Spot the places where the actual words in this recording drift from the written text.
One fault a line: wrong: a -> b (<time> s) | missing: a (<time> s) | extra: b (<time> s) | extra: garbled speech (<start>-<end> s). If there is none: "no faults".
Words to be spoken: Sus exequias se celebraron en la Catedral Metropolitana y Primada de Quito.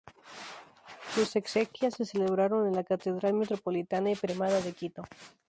no faults